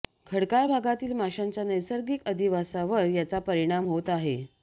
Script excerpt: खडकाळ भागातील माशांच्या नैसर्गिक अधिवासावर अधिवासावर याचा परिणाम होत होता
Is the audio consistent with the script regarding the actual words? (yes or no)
no